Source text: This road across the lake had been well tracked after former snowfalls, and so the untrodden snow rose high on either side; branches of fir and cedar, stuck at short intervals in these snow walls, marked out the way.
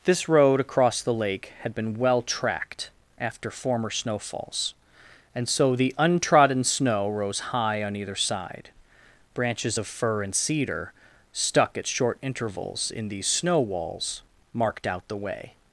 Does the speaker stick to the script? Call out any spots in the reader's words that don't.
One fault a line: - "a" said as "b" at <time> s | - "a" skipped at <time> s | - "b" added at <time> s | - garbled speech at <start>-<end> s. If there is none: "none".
none